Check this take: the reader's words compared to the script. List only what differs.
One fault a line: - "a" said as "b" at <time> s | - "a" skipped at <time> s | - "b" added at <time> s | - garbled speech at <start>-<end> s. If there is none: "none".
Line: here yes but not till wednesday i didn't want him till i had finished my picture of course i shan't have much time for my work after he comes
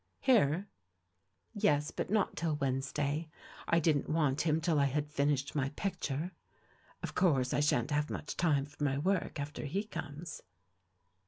none